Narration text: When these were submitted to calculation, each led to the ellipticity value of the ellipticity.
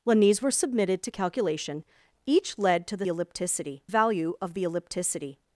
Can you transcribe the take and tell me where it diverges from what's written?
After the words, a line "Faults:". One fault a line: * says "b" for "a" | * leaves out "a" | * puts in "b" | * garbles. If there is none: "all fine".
When these were submitted to calculation, each led to the ellipticity value of the ellipticity.
Faults:
all fine